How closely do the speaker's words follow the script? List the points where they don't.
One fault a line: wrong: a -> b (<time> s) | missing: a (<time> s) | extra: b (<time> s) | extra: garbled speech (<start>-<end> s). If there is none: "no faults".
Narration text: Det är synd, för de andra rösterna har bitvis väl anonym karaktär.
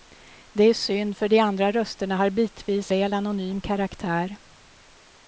no faults